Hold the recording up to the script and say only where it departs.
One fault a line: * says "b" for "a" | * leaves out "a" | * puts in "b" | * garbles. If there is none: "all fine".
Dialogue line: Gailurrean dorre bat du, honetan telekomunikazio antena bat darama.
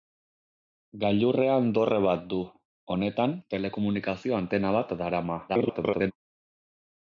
* garbles